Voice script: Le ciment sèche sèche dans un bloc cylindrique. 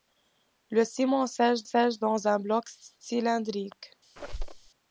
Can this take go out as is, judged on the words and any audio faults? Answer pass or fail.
fail